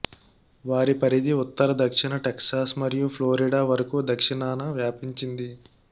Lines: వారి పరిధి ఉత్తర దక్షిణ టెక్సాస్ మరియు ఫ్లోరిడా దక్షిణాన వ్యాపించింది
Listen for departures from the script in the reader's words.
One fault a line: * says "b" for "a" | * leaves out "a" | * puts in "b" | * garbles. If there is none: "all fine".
* puts in "వరకు"